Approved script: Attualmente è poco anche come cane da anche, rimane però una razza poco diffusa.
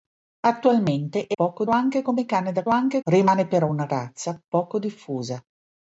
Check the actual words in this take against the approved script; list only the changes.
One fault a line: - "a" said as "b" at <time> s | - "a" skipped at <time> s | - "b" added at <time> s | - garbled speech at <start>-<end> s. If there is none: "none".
none